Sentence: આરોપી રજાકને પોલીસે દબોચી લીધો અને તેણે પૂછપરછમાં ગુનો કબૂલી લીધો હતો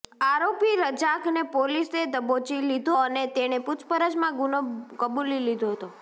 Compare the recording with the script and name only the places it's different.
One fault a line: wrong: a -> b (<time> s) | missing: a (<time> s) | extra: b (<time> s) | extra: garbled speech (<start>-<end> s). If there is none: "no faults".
no faults